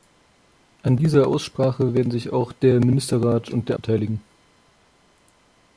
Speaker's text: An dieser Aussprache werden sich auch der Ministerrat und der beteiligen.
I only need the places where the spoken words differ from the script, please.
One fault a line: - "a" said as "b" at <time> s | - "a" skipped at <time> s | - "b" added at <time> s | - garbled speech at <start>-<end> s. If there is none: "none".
none